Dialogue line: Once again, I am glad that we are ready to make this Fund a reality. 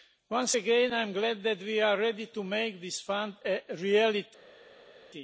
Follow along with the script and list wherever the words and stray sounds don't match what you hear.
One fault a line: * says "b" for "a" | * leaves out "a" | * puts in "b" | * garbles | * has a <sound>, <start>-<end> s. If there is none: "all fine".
all fine